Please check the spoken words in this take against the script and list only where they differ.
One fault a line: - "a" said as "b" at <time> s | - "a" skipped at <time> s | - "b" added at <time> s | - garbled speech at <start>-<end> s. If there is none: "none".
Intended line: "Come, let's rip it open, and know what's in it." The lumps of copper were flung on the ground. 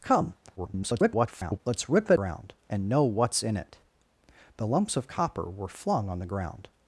- garbled speech at 0.6-1.6 s
- "open" said as "ground" at 2.1 s